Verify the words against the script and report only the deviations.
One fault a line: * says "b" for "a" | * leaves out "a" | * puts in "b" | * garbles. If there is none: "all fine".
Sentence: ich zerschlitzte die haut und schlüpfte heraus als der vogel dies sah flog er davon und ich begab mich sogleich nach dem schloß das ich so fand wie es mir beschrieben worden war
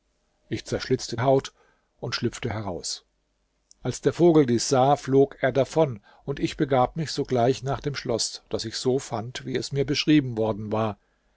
* leaves out "die"